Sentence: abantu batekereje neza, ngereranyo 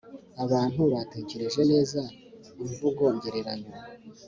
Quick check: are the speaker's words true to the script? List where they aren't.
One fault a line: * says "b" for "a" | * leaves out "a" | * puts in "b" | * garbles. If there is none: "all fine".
* puts in "imvugo"